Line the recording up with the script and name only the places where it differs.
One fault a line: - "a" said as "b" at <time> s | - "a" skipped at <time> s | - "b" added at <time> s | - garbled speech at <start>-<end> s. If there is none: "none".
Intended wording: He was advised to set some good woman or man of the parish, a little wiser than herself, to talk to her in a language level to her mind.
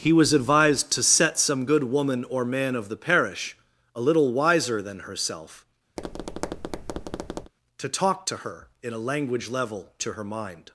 none